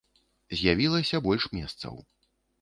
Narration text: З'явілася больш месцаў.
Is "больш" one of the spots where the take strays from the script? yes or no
no